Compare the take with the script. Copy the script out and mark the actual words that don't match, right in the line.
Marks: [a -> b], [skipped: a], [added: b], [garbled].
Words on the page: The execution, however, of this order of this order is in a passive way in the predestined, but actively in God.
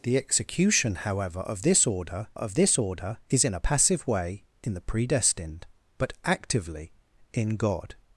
The execution, however, of this order of this order is in a passive way in the predestined, but actively in God.